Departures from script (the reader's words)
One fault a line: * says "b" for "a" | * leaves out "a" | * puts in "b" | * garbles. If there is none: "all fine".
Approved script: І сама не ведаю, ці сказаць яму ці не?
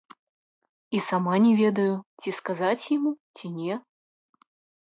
all fine